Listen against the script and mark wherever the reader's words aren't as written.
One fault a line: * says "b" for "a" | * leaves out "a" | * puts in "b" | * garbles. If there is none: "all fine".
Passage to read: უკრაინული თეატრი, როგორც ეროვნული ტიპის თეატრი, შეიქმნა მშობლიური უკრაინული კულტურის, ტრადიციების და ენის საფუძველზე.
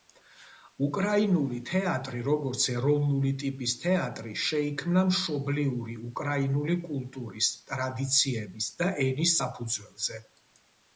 all fine